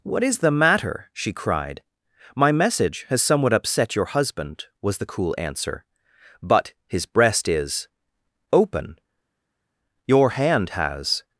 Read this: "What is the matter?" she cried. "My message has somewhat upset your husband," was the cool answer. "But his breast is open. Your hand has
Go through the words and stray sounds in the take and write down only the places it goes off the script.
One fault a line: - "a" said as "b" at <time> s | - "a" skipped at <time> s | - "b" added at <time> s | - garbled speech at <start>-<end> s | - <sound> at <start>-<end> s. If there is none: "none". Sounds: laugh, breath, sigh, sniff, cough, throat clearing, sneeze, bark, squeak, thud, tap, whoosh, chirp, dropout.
none